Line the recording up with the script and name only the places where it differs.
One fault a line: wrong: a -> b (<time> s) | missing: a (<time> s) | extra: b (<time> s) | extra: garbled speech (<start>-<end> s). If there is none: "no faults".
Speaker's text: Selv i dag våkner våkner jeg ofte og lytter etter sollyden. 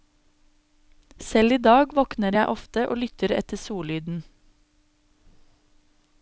missing: våkner (2.4 s)